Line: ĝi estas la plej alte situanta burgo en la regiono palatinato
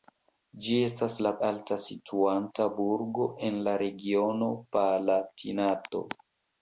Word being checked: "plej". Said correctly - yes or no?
no